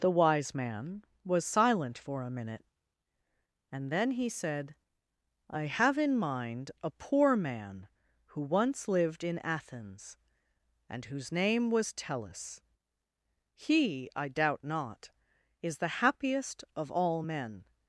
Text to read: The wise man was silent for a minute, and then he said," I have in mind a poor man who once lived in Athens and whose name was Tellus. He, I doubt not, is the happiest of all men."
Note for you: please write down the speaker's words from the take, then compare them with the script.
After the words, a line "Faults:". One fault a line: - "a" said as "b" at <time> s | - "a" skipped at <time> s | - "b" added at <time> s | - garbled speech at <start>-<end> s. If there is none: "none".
The wise man was silent for a minute, and then he said," I have in mind a poor man who once lived in Athens and whose name was Tellus. He, I doubt not, is the happiest of all men."
Faults:
none